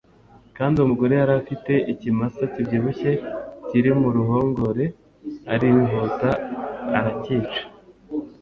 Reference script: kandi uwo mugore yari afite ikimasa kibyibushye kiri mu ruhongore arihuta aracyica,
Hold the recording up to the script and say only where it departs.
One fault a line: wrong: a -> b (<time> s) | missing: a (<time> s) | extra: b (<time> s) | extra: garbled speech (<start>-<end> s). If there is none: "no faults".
no faults